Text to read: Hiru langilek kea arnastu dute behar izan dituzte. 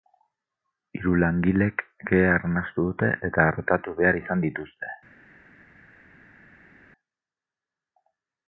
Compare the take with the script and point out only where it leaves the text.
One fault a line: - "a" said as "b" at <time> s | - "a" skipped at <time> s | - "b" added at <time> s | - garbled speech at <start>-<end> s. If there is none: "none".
- "eta artatu" added at 3.3 s